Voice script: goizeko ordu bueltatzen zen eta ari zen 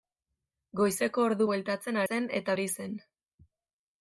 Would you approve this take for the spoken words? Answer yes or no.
yes